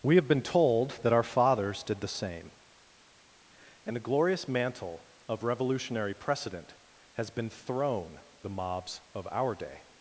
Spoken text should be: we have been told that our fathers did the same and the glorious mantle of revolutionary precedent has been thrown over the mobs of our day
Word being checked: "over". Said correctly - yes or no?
no